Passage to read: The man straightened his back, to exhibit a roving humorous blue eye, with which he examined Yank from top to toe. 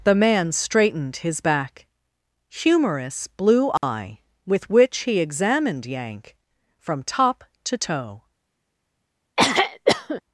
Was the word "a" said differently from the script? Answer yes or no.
yes